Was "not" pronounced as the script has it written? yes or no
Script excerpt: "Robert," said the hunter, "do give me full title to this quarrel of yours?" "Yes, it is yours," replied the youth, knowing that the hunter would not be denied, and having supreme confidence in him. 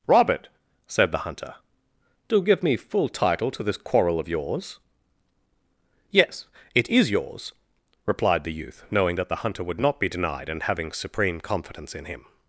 yes